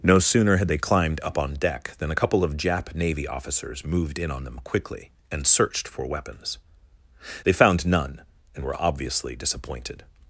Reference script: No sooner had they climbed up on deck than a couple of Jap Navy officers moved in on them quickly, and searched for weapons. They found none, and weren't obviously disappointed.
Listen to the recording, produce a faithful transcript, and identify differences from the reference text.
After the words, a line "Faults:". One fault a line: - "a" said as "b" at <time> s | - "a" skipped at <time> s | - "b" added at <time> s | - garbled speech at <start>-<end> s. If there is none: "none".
No sooner had they climbed up on deck than a couple of Jap Navy officers moved in on them quickly, and searched for weapons. They found none, and were obviously disappointed.
Faults:
- "weren't" said as "were" at 8.6 s